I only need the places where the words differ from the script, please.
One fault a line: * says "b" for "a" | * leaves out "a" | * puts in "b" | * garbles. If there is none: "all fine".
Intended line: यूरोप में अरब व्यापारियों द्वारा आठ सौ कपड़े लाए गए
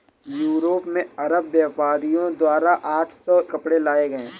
all fine